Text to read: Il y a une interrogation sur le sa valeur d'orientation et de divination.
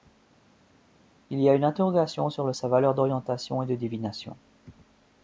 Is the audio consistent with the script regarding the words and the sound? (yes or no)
yes